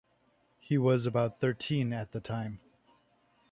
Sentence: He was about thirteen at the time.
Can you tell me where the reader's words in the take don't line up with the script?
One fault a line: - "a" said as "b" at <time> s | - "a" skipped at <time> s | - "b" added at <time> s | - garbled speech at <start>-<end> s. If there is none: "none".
none